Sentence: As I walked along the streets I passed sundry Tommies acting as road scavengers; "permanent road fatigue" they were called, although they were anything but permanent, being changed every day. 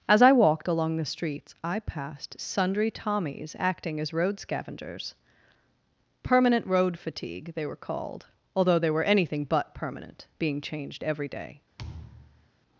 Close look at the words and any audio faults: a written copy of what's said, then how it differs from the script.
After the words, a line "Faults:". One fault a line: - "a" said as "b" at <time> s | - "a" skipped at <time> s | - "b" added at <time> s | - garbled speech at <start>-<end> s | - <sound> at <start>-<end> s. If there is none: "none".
As I walked along the streets I passed sundry Tommies acting as road scavengers; "permanent road fatigue" they were called, although they were anything but permanent, being changed every day.
Faults:
- thud at 11.8-12.5 s